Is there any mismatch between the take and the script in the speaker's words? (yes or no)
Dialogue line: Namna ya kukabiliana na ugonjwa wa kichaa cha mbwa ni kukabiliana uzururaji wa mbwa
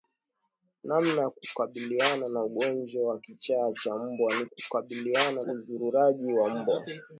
no